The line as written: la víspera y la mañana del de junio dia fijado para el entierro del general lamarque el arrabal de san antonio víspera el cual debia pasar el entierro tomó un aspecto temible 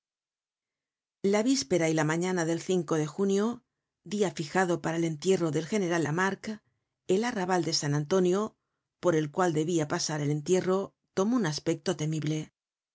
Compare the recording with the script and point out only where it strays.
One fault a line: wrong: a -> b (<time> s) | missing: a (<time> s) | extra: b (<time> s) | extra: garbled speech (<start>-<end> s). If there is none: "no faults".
wrong: víspera -> por (9.0 s)